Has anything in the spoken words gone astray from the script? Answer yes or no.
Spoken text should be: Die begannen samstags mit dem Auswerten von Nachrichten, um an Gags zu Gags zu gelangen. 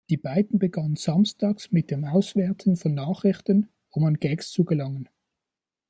yes